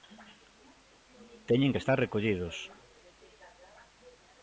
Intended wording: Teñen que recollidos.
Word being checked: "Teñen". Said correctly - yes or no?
yes